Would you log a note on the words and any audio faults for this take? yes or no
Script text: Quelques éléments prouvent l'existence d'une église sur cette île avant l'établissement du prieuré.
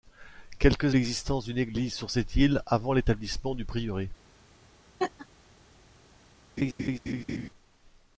yes